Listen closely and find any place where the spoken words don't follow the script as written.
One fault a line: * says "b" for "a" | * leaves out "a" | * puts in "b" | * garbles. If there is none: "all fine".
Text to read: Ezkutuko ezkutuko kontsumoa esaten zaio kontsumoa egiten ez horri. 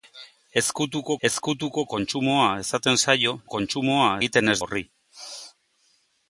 all fine